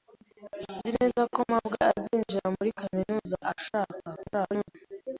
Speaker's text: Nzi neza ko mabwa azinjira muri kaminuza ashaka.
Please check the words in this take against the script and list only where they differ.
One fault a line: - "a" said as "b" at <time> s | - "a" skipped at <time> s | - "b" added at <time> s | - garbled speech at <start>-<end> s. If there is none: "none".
- garbled speech at 4.2-4.7 s